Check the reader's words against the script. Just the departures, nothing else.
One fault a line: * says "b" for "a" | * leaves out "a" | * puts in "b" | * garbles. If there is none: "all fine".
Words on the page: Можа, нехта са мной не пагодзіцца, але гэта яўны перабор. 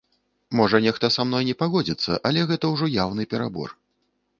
* puts in "ўжо"